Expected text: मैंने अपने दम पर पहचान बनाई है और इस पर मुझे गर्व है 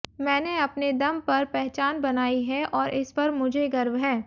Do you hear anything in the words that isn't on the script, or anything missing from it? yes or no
no